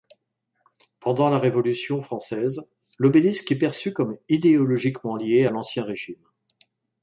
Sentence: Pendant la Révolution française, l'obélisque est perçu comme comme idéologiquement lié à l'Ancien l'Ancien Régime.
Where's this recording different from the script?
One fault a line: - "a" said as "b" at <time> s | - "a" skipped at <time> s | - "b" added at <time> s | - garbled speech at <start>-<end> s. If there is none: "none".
- "comme" skipped at 4.2 s
- "l'Ancien" skipped at 5.8 s